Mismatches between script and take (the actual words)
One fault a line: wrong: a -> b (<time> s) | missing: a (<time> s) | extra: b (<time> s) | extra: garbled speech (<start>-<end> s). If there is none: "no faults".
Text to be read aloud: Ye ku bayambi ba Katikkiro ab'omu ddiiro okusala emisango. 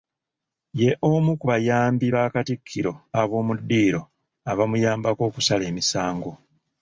extra: omu (1.1 s)
extra: abamuyambako (4.5 s)